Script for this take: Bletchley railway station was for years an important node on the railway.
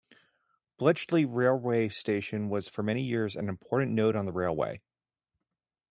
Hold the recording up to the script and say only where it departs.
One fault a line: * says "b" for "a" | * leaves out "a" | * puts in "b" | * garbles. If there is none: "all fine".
* puts in "many"